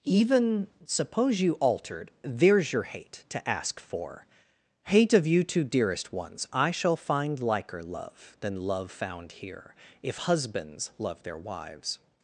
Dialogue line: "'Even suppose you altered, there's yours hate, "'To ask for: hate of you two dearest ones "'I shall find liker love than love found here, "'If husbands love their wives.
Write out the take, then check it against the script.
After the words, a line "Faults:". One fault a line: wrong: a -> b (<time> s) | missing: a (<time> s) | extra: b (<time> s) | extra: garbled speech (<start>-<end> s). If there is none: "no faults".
"'Even suppose you altered, there's your hate, "'To ask for: hate of you two dearest ones "'I shall find liker love than love found here, "'If husbands love their wives.
Faults:
wrong: yours -> your (2.7 s)